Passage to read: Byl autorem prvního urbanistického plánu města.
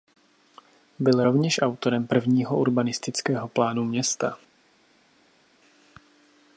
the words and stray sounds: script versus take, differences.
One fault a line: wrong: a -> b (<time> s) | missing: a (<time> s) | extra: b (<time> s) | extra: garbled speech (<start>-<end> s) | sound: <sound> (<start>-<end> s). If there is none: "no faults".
extra: rovněž (1.2 s)